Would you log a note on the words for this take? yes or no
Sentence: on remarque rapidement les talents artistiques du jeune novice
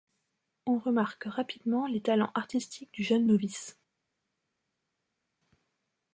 no